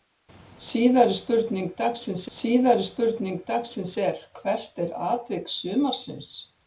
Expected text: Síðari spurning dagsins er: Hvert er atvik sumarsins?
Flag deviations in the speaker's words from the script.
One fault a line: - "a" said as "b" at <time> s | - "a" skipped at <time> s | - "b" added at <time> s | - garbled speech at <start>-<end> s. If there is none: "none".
- "síðari spurning dagsins" added at 2.4 s